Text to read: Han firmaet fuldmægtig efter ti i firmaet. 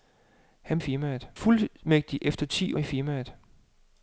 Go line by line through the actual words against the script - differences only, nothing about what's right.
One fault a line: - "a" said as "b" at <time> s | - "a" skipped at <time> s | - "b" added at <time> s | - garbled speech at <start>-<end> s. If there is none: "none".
none